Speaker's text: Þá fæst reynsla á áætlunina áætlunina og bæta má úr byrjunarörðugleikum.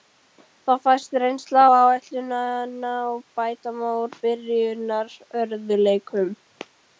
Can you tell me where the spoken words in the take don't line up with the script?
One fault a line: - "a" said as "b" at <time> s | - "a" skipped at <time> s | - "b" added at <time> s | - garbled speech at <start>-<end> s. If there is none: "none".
- "áætlunina" skipped at 2.9 s